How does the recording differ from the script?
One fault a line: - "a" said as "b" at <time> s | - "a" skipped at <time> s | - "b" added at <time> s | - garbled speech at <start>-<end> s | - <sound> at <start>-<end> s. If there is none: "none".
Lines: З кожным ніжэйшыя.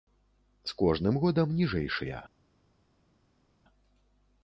- "годам" added at 1.2 s